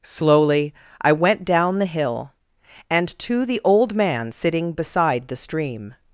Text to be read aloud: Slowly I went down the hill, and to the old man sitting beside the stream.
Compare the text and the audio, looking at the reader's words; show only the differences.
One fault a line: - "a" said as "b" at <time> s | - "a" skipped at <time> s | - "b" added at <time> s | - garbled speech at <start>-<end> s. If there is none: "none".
none